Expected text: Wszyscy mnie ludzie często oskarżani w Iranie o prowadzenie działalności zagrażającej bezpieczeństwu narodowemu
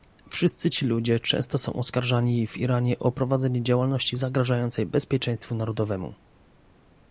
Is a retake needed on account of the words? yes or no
yes